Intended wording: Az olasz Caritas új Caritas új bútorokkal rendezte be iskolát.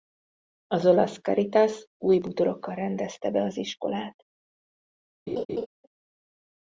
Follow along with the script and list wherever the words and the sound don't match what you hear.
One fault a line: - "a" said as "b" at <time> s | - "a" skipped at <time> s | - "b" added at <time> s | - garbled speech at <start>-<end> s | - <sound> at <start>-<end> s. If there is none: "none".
- "Caritas új" skipped at 2.2 s
- "az" added at 3.4 s
- laugh at 5.3-5.7 s